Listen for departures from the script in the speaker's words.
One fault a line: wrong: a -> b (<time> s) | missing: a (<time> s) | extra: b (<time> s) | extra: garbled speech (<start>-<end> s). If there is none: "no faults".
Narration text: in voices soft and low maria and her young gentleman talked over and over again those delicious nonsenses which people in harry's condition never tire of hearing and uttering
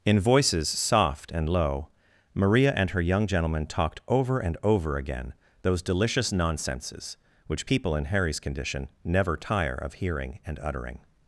no faults